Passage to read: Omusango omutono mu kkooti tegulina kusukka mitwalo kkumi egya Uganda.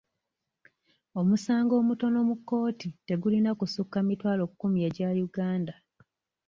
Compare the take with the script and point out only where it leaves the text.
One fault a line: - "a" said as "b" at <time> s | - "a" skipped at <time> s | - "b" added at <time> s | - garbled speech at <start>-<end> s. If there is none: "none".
none